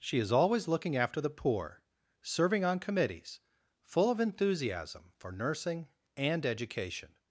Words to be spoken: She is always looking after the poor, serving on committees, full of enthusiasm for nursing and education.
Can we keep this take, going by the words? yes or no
yes